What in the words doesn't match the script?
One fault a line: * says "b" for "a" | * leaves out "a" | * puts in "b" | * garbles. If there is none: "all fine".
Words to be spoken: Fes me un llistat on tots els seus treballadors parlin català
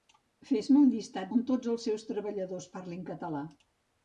all fine